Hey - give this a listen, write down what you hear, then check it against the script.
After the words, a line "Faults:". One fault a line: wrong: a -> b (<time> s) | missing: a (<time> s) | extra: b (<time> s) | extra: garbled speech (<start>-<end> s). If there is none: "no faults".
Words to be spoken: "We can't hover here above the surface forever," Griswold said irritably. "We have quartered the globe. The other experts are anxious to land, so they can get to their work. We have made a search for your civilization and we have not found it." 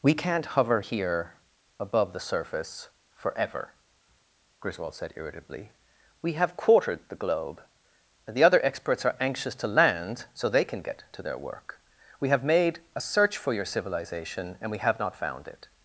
"We can't hover here above the surface forever," Griswold said irritably. "We have quartered the globe. and The other experts are anxious to land, so they can get to their work. We have made a search for your civilization and we have not found it."
Faults:
extra: and (8.2 s)